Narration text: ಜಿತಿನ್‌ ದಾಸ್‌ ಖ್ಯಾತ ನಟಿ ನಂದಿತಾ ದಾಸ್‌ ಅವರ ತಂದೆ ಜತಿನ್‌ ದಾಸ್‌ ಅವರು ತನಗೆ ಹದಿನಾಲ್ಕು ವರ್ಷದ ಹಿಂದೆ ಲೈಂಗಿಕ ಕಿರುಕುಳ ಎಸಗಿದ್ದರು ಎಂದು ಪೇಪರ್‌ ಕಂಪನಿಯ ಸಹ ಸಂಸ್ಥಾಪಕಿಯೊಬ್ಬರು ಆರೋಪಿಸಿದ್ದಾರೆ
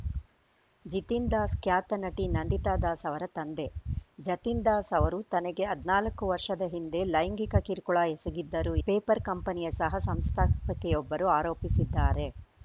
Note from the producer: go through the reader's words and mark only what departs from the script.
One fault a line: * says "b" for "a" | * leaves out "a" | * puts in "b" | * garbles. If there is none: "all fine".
* leaves out "ಎಂದು"